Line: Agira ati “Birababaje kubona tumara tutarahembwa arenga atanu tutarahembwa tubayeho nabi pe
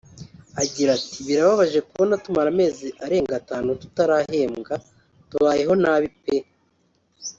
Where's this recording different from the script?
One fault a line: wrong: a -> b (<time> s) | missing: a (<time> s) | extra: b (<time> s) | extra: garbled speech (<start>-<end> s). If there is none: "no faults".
wrong: tutarahembwa -> amezi (2.5 s)